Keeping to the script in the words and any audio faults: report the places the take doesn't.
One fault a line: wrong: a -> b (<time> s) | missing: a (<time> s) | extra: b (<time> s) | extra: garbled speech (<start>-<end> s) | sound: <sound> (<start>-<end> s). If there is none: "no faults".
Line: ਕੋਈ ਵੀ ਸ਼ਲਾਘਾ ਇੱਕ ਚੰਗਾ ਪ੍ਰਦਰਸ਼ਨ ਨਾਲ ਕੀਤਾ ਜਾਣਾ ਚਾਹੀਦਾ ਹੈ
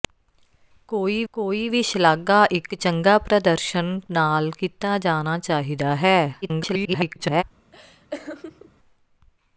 extra: ਕੋਈ (1.3 s)
extra: garbled speech (6.4-7.4 s)
sound: laugh (7.7-8.7 s)